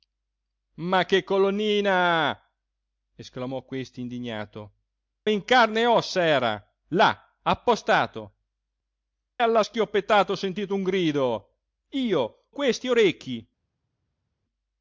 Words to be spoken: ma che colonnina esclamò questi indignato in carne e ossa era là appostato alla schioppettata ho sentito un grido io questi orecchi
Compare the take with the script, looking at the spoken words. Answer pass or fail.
pass